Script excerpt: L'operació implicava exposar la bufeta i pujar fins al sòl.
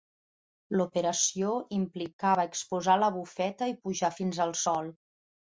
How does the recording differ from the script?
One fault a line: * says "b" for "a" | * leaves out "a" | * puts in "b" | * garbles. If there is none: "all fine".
all fine